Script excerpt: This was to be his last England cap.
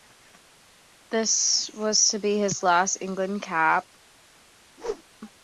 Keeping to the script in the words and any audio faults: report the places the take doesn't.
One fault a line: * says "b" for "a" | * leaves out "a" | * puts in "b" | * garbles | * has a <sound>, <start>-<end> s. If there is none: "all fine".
* has a whoosh, 4.8-5.0 s